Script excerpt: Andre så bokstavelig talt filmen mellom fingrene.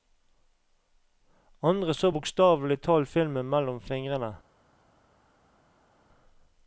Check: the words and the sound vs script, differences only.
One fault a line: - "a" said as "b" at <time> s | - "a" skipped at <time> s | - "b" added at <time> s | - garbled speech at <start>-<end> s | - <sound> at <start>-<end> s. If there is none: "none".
none